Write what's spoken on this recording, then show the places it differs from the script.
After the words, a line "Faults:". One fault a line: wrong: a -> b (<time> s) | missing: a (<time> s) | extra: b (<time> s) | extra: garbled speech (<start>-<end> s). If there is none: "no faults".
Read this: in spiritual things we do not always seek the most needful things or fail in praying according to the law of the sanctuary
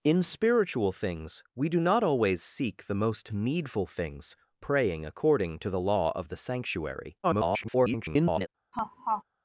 in spiritual things we do not always seek the most needful things praying according to the law of the sanctuary [garbled]
Faults:
missing: or fail in (4.3 s)
extra: garbled speech (7.2-8.5 s)